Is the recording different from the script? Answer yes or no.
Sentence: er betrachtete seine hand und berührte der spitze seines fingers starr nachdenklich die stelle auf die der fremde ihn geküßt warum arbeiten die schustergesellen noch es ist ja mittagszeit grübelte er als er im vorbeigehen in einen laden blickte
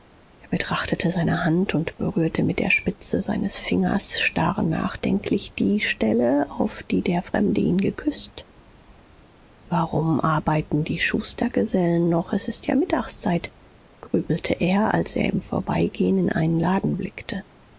yes